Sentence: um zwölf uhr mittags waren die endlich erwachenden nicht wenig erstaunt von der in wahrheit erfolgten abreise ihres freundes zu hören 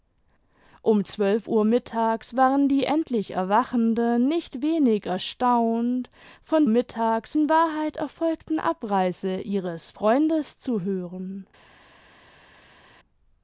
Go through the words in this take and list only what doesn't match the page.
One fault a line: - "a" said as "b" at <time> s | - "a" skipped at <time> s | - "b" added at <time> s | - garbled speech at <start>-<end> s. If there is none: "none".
- "der" said as "mittags" at 6.7 s